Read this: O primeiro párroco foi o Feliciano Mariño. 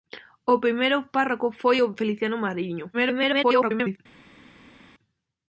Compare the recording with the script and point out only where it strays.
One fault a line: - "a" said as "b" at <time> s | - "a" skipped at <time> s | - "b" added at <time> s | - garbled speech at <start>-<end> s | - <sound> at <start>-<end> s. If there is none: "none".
- garbled speech at 2.9-4.0 s